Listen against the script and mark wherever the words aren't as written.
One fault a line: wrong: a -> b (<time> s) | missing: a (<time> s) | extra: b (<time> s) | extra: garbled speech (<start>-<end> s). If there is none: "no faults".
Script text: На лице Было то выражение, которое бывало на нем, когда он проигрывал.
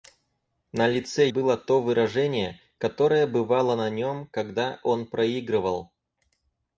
no faults